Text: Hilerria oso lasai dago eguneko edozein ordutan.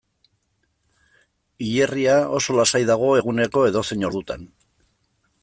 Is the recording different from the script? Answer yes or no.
no